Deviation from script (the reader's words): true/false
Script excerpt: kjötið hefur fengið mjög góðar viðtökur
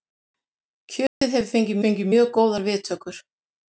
true